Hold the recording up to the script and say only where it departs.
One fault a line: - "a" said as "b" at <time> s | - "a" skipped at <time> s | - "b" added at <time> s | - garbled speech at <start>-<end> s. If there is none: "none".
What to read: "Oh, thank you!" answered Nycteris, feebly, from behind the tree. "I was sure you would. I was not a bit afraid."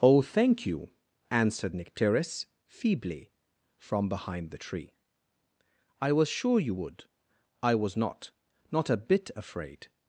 - "not" added at 8.7 s